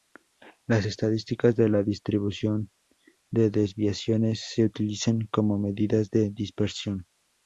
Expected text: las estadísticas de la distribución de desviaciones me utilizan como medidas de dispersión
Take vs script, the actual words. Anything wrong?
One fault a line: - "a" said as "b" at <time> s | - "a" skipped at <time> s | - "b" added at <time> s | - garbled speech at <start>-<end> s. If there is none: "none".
- "me" said as "se" at 4.4 s